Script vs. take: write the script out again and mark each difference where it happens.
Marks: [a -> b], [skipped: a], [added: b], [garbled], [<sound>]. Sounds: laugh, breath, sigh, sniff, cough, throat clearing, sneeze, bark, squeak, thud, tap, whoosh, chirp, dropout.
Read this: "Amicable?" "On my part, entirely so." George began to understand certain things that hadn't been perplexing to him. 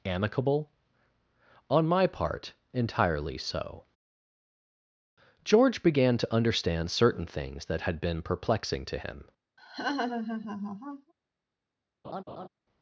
"Amicable?" "On my part, entirely so." George began to understand certain things that [hadn't -> had] been perplexing to him. [laugh] [laugh]